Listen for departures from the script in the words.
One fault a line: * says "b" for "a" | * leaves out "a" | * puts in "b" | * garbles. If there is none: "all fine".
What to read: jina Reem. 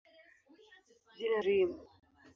all fine